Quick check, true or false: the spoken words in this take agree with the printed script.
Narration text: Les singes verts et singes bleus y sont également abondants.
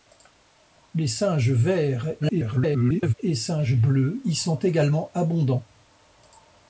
false